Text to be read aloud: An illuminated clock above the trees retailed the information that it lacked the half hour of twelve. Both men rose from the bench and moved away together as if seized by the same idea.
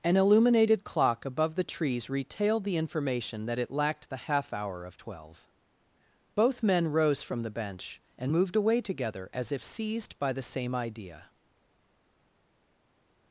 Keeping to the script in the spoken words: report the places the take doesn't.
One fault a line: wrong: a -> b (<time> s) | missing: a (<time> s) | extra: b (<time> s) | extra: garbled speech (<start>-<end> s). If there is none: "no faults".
no faults